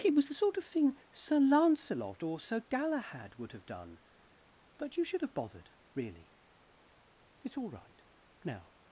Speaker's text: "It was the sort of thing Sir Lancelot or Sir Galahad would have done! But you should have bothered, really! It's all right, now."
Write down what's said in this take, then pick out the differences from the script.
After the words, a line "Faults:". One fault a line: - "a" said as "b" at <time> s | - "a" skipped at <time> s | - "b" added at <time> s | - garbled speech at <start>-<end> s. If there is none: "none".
"It was the sort of thing Sir Lancelot or Sir Galahad would have done! But you should have bothered, really! It's all right, now."
Faults:
none